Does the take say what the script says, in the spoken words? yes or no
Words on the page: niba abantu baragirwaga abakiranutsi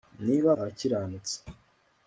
no